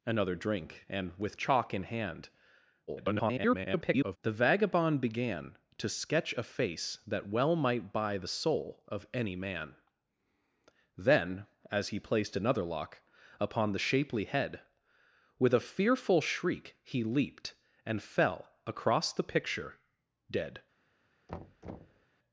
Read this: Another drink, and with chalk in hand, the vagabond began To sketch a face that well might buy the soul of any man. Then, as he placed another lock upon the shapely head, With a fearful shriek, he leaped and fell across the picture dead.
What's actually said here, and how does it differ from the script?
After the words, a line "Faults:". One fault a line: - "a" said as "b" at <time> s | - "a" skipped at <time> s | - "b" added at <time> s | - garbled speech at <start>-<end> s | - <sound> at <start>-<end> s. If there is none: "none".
Another drink, and with chalk in hand, [garbled] the vagabond began To sketch a face that well might buy the soul of any man. Then, as he placed another lock upon the shapely head, With a fearful shriek, he leaped and fell across the picture dead.
Faults:
- garbled speech at 2.9-4.2 s
- thud at 21.3-22.1 s